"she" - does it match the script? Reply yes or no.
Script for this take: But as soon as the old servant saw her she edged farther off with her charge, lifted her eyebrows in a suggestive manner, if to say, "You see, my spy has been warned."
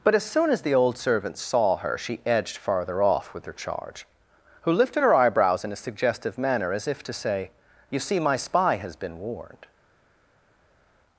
yes